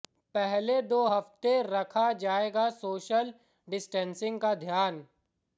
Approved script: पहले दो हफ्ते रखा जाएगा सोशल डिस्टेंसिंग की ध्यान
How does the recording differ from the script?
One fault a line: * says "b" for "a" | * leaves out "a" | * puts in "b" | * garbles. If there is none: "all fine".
* says "का" for "की"